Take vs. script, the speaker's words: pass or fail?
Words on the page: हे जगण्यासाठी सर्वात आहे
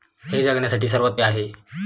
pass